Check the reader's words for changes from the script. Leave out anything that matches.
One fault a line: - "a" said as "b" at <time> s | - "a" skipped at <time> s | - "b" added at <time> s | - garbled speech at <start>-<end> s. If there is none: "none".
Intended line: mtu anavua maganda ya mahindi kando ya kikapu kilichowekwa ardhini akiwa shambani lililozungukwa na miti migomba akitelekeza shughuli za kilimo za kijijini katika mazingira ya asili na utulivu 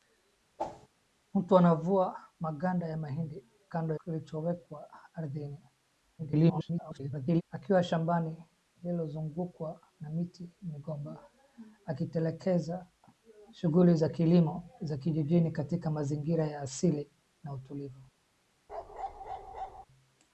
- "ya kikapu" skipped at 3.9 s
- garbled speech at 6.2-7.4 s